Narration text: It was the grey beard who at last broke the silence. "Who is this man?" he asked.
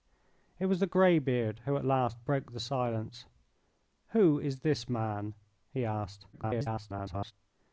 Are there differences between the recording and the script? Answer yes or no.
yes